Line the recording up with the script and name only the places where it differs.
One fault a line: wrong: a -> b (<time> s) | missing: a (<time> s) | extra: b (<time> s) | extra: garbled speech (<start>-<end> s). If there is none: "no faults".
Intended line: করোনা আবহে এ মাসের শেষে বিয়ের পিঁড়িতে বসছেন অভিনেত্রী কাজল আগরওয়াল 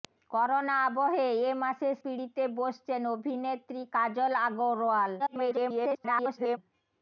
missing: শেষে বিয়ের (1.9 s)
extra: garbled speech (5.2-6.6 s)